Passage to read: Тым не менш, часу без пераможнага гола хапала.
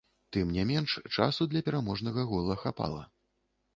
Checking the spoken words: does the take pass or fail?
fail